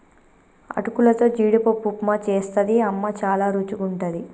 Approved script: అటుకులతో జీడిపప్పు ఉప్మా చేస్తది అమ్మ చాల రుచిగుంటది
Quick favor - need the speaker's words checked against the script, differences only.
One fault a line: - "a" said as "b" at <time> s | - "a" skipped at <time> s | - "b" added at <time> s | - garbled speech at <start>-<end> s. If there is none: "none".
none